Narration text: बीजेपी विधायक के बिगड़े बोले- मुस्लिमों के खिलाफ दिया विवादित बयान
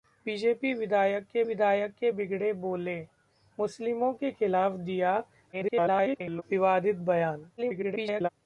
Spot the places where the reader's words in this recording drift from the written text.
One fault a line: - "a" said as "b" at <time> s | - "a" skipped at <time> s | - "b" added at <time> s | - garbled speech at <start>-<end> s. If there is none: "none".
- "विधायक के" added at 1.4 s
- garbled speech at 5.5-6.4 s
- garbled speech at 7.6-8.3 s